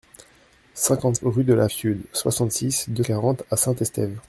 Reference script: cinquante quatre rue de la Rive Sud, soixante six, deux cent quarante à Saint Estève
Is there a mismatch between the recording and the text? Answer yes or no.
yes